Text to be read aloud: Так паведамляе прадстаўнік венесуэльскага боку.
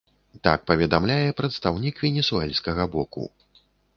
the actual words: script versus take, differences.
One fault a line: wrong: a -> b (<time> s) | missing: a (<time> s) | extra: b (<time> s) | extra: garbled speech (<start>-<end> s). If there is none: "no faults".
no faults